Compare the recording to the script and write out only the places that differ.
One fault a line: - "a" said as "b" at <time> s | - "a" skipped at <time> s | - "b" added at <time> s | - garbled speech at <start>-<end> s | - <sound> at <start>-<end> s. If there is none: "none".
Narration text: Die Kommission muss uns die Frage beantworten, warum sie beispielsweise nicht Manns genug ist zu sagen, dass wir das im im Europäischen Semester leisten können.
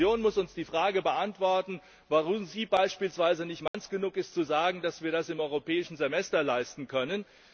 - dropout at 3.7-3.7 s
- "im" skipped at 5.4 s